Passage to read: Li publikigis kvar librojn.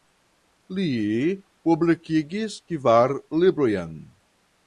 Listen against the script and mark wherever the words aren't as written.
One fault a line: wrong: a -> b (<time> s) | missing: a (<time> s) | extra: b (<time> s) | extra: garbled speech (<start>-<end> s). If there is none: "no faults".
no faults